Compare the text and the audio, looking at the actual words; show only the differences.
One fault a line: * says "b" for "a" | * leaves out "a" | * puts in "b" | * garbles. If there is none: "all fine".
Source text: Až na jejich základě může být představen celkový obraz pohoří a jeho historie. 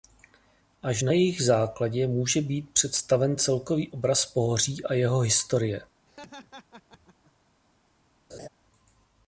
all fine